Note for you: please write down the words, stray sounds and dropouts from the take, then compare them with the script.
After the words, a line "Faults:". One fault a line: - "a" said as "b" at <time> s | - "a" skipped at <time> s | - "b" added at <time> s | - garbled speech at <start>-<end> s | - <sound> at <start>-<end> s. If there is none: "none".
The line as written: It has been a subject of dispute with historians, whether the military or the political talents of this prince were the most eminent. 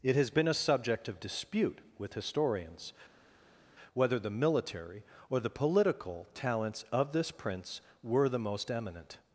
It has been a subject of dispute with historians, whether the military or the political talents of this prince were the most eminent.
Faults:
none